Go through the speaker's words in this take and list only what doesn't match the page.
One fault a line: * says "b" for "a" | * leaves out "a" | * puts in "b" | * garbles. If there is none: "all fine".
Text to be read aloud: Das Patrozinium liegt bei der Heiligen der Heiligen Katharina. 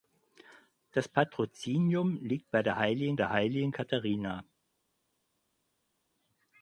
all fine